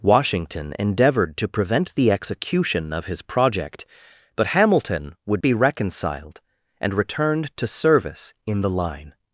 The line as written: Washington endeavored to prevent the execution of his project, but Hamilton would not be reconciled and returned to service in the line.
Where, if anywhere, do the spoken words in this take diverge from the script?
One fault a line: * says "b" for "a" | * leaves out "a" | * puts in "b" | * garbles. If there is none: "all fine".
* leaves out "not"